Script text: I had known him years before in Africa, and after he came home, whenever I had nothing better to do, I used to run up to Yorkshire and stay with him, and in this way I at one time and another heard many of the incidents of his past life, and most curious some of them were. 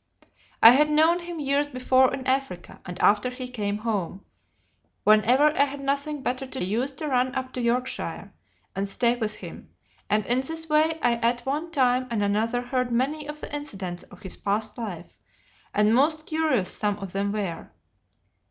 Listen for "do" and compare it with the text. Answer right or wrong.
wrong